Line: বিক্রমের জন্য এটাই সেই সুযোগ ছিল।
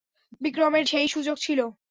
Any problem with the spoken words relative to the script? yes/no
yes